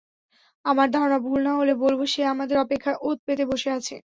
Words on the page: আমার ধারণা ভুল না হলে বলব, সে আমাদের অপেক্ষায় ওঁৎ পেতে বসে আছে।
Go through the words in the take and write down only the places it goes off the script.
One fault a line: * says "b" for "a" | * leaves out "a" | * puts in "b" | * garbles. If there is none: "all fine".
all fine